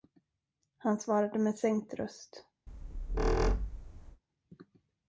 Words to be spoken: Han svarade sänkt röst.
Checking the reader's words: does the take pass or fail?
fail